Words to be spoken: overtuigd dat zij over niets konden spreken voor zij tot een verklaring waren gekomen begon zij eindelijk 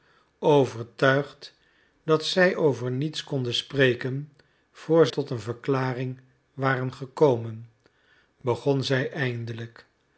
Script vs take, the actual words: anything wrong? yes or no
yes